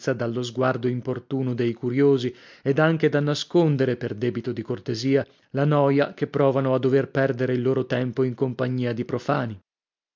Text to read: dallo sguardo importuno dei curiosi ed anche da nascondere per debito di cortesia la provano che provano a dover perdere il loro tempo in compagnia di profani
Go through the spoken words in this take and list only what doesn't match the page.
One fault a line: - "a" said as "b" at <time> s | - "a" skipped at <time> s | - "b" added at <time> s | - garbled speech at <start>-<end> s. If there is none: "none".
- "provano" said as "noia" at 5.7 s